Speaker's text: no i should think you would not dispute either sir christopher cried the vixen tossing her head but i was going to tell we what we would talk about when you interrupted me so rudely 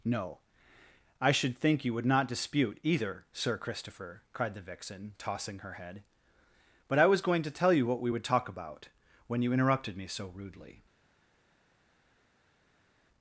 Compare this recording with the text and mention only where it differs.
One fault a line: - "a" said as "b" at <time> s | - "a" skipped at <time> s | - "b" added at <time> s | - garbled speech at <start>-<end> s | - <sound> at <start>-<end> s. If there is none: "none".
- "we" said as "you" at 7.7 s